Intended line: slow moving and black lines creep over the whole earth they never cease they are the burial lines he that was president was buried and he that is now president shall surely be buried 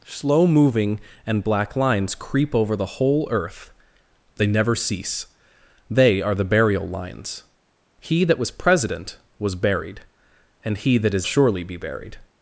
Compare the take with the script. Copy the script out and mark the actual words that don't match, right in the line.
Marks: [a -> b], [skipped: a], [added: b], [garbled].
slow moving and black lines creep over the whole earth they never cease they are the burial lines he that was president was buried and he that is [skipped: now president shall] surely be buried